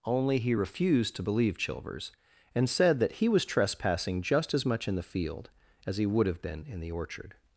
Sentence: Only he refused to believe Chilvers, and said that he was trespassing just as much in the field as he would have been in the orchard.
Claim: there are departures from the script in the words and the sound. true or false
false